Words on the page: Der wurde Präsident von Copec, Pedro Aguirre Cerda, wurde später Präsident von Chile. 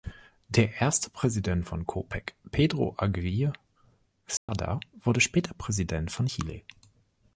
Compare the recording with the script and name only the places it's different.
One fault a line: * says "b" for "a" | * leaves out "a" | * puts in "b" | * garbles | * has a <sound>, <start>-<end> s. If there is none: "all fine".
* says "erste" for "wurde"
* has a dropout, 4.4-4.5 s